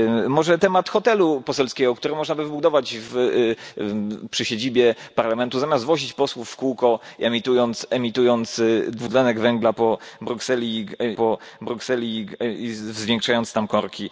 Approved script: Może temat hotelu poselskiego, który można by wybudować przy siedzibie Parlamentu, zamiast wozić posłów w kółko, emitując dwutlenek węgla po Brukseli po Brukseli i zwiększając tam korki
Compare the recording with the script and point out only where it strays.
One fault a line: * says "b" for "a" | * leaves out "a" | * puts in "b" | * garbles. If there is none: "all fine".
all fine